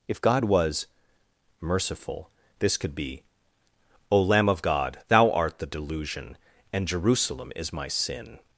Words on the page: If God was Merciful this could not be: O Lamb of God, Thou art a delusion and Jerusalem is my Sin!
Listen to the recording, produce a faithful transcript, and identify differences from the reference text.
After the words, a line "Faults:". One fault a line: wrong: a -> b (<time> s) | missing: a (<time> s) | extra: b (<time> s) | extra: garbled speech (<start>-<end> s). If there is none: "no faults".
If God was Merciful this could be: O Lamb of God, Thou art the delusion and Jerusalem is my Sin!
Faults:
missing: not (2.9 s)
wrong: a -> the (5.6 s)